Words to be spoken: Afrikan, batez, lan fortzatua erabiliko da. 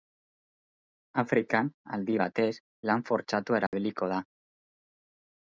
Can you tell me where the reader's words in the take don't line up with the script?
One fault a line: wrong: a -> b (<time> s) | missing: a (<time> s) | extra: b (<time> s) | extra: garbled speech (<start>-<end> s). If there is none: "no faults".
extra: aldi (2.0 s)